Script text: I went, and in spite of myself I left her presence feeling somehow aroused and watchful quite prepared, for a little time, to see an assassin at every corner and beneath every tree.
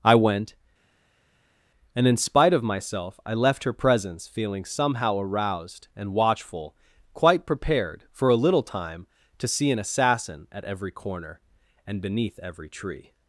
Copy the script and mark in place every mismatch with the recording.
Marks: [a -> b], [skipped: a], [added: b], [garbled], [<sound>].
I went, and in spite of myself I left her presence feeling somehow aroused and watchful quite prepared, for a little time, to see an assassin at every corner and beneath every tree.